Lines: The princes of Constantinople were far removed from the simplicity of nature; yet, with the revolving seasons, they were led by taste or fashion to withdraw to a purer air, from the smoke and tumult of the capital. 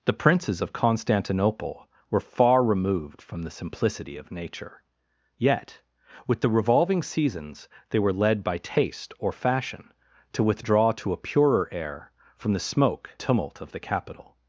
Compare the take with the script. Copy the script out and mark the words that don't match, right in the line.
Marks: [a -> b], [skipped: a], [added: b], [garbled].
The princes of Constantinople were far removed from the simplicity of nature; yet, with the revolving seasons, they were led by taste or fashion to withdraw to a purer air, from the smoke [skipped: and] tumult of the capital.